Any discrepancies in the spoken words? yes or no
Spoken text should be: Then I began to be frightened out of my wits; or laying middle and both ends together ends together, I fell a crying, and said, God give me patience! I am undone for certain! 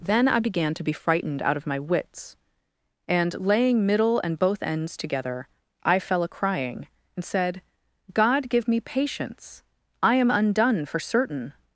yes